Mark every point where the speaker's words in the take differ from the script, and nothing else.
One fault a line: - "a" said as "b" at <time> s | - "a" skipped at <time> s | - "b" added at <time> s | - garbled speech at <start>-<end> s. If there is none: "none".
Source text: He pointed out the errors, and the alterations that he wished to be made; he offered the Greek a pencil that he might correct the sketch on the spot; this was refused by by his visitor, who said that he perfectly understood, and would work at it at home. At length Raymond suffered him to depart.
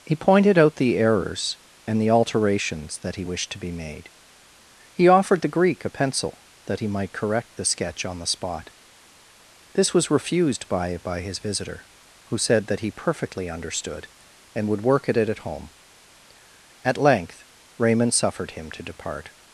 none